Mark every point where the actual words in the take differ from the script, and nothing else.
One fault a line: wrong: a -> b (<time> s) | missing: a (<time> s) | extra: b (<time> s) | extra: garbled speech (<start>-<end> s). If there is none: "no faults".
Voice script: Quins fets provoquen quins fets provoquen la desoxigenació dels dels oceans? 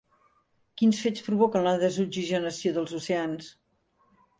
missing: quins fets provoquen (1.7 s)
missing: dels (3.0 s)